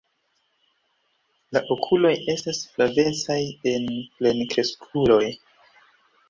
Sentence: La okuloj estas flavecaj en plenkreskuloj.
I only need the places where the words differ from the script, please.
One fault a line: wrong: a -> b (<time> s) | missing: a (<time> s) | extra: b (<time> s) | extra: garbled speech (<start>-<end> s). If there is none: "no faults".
no faults